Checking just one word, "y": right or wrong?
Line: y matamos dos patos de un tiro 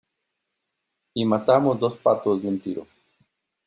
right